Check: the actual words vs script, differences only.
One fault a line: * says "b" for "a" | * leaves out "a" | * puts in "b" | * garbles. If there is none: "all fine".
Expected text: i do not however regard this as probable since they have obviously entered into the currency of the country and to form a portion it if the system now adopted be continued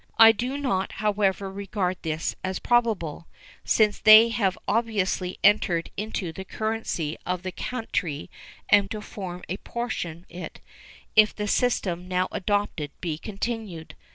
all fine